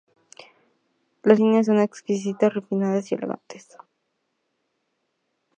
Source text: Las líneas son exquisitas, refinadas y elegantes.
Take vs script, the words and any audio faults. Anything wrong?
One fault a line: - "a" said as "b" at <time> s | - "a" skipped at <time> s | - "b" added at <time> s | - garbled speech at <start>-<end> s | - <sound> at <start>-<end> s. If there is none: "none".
none